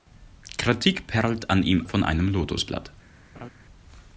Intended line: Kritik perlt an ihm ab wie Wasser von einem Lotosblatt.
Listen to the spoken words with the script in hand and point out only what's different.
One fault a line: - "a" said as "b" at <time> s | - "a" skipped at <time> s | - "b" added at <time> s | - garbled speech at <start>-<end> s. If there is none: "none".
- "ab wie Wasser" skipped at 1.8 s